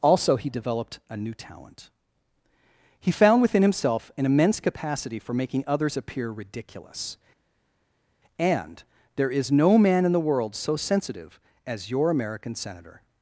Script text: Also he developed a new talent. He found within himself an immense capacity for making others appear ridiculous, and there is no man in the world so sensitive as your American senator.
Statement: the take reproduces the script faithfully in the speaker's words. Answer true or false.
true